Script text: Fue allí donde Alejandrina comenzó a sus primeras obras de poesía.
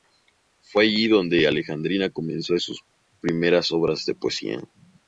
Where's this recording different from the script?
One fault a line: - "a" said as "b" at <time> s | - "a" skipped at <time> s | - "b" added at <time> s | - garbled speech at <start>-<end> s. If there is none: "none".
none